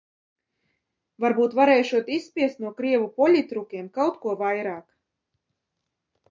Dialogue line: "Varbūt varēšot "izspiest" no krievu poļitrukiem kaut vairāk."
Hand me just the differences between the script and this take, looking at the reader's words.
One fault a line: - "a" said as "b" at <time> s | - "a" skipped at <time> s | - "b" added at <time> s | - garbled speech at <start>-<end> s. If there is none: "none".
- "ko" added at 4.3 s